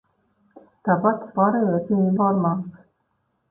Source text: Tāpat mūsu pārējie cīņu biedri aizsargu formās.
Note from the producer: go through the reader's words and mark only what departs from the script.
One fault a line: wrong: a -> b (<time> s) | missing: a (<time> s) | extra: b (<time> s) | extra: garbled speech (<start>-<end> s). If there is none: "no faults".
missing: mūsu (1.3 s)
missing: biedri aizsargu (2.1 s)